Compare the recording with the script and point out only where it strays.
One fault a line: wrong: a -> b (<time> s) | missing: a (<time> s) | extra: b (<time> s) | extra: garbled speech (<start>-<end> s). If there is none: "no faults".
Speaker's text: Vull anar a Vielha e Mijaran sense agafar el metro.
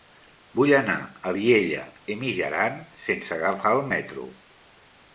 no faults